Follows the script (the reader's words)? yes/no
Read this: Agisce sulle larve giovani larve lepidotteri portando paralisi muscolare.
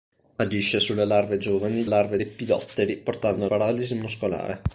yes